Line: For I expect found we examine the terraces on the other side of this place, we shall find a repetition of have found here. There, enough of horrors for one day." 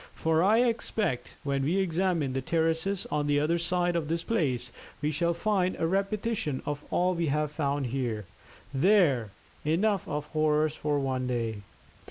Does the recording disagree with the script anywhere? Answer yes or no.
yes